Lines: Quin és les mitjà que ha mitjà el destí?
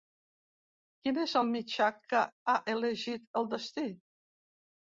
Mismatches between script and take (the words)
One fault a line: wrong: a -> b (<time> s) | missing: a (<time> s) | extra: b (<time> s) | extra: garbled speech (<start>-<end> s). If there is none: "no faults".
wrong: les -> el (1.4 s)
wrong: mitjà -> elegit (2.8 s)